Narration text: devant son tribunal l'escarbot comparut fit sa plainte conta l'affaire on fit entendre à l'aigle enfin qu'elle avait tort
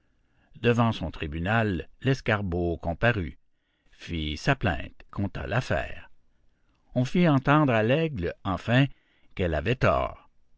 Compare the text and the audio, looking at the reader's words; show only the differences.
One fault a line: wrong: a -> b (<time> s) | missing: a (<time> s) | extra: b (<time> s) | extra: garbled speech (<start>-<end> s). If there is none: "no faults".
no faults